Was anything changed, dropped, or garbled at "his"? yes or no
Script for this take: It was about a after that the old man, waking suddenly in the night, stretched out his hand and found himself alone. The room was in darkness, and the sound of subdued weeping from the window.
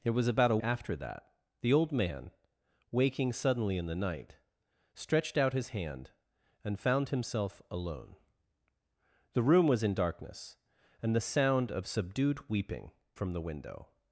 no